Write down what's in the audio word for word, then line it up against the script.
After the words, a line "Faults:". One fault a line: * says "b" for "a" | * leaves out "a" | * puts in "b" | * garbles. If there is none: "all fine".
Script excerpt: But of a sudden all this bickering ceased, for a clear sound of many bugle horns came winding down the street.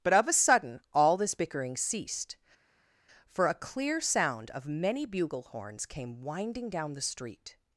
But of a sudden all this bickering ceased, for a clear sound of many bugle horns came winding down the street.
Faults:
all fine